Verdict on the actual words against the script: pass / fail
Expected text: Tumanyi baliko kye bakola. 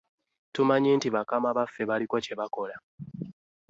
fail